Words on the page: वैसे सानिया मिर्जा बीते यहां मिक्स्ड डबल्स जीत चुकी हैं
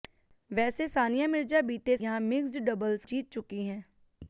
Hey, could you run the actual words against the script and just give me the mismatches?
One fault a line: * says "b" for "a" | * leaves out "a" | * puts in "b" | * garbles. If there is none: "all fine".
all fine